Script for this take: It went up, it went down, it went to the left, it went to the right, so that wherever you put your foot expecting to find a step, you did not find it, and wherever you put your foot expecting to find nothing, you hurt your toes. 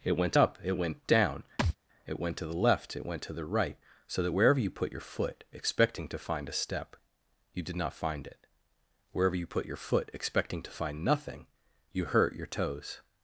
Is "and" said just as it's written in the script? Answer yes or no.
no